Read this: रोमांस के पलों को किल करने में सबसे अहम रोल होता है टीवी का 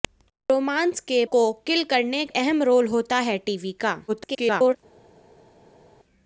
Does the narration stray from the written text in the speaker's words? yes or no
yes